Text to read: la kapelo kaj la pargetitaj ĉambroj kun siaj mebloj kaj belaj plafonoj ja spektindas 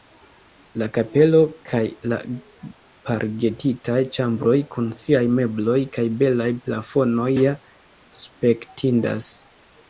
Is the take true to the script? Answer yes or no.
yes